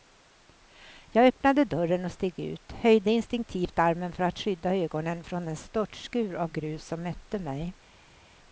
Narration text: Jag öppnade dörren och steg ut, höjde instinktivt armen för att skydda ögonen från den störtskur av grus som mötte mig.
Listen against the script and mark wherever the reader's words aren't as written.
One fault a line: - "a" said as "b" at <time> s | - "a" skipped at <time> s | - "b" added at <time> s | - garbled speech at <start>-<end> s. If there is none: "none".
none